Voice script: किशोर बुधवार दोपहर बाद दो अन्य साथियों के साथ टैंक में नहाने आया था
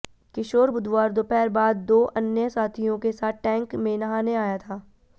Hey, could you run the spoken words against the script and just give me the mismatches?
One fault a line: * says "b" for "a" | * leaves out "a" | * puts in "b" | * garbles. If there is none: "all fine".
all fine